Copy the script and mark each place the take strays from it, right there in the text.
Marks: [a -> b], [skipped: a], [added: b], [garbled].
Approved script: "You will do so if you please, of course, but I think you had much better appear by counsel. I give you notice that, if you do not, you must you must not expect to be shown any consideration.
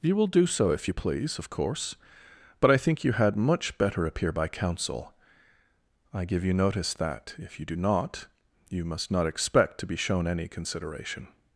"You will do so if you please, of course, but I think you had much better appear by counsel. I give you notice that, if you do not, you must [skipped: you must] not expect to be shown any consideration.